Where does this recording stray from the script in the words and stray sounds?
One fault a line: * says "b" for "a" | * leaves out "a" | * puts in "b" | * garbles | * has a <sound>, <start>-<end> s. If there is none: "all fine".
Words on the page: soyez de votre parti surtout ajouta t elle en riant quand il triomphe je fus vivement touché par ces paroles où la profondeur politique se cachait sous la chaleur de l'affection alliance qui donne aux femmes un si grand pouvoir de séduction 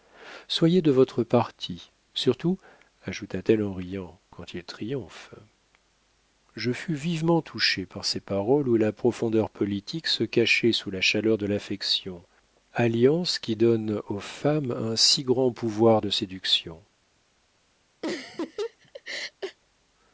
* has a laugh, 18.0-19.6 s